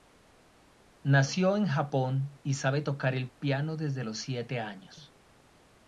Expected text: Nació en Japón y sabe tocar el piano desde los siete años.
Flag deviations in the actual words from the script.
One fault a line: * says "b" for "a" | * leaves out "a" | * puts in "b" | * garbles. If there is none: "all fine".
all fine